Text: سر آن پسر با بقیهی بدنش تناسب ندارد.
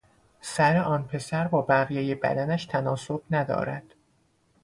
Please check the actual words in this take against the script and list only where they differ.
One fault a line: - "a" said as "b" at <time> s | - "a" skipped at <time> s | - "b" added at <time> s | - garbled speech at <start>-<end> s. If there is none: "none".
none